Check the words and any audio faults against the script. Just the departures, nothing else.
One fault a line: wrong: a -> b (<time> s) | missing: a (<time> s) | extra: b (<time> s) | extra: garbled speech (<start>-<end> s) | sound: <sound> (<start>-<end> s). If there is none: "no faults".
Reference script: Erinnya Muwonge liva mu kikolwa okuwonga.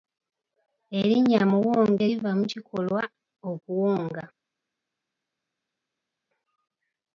no faults